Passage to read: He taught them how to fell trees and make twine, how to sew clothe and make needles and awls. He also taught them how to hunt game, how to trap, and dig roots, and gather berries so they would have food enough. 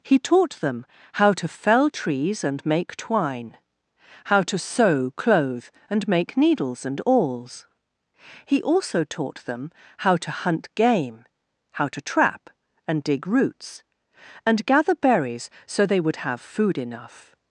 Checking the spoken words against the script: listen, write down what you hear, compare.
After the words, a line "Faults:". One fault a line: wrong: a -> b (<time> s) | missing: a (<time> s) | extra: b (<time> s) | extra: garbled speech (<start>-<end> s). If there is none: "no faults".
He taught them how to fell trees and make twine, how to sew clothe and make needles and awls. He also taught them how to hunt game, how to trap, and dig roots, and gather berries so they would have food enough.
Faults:
no faults